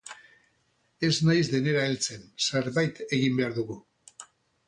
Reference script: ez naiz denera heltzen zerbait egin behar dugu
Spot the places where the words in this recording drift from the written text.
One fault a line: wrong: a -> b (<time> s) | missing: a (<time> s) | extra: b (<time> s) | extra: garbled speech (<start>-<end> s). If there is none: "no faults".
no faults